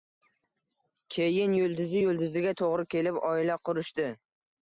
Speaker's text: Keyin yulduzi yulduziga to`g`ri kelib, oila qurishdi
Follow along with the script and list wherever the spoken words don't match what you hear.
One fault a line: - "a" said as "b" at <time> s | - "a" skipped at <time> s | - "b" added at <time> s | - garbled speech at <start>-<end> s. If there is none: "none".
none